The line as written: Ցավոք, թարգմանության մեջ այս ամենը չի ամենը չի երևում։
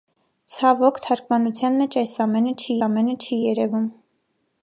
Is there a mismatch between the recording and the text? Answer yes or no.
no